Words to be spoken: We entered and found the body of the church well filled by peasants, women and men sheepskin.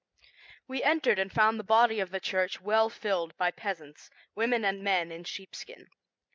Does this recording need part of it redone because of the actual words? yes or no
yes